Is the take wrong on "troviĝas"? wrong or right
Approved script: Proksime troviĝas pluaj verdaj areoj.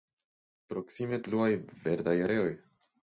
wrong